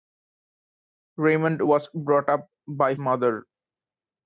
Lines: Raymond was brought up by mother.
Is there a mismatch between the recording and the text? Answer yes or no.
no